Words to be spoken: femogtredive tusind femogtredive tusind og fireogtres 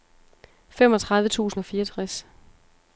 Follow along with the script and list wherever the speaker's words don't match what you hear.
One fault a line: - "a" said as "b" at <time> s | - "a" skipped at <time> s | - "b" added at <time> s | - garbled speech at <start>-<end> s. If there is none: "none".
- "femogtredive tusind" skipped at 1.6 s